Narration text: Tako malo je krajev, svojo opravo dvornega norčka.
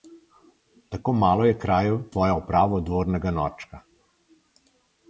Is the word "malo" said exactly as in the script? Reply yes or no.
yes